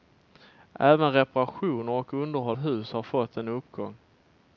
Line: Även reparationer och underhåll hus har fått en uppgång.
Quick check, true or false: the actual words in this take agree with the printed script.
true